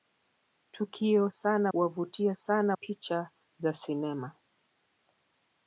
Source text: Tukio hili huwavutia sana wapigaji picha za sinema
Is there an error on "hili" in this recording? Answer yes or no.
yes